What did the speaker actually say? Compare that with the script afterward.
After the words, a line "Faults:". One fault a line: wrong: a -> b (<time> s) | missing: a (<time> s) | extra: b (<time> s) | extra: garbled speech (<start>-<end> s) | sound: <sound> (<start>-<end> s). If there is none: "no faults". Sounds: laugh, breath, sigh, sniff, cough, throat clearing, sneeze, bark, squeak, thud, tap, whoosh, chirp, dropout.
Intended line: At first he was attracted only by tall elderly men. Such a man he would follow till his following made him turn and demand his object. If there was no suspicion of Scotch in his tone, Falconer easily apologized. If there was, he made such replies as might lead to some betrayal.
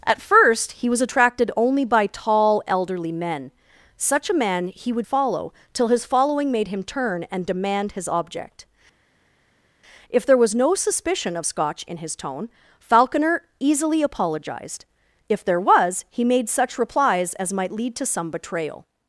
At first he was attracted only by tall elderly men. Such a man he would follow till his following made him turn and demand his object. If there was no suspicion of Scotch in his tone, Falconer easily apologized. If there was, he made such replies as might lead to some betrayal.
Faults:
no faults